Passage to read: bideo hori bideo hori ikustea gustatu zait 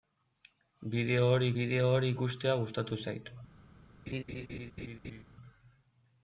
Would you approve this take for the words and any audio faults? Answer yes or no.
no